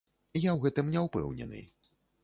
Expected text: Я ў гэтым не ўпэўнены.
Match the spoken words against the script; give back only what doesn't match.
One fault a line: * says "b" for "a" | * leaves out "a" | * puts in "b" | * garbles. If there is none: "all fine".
all fine